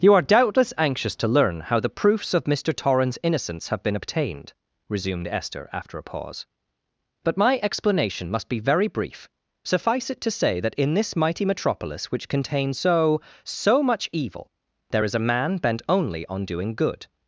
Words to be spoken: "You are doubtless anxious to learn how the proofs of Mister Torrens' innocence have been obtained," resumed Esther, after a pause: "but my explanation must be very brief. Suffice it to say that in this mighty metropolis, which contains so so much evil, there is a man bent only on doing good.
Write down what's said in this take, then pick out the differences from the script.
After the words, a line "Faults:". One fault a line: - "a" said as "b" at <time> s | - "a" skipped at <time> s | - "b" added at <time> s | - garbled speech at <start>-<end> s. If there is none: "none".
"You are doubtless anxious to learn how the proofs of Mister Torrens' innocence have been obtained," resumed Esther, after a pause: "but my explanation must be very brief. Suffice it to say that in this mighty metropolis, which contains so so much evil, there is a man bent only on doing good.
Faults:
none